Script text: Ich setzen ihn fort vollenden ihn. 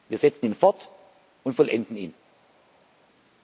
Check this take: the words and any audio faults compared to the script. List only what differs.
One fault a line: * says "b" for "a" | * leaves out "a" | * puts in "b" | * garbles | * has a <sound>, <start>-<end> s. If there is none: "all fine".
* says "Wir" for "Ich"
* puts in "und"